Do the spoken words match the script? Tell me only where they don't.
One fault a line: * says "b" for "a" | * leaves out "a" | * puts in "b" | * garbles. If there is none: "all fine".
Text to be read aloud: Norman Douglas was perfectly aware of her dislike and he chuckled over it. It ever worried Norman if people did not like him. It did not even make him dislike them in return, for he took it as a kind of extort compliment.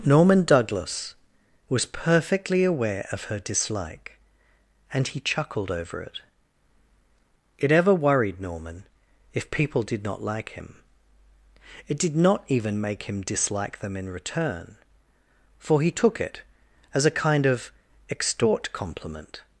all fine